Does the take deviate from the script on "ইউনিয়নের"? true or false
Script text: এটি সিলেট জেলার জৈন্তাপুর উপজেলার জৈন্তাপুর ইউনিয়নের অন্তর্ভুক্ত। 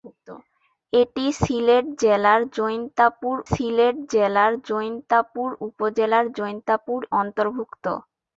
true